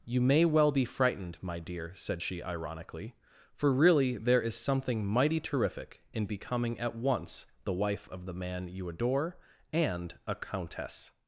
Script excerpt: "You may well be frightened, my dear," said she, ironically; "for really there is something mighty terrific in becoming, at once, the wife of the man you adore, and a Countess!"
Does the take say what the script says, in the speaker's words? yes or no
yes